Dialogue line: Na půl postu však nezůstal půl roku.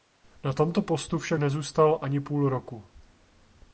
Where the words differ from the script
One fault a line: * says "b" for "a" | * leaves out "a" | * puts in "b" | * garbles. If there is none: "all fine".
* says "tomto" for "půl"
* puts in "ani"